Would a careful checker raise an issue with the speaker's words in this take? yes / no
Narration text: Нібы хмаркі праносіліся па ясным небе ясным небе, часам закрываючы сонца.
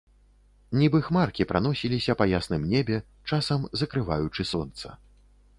yes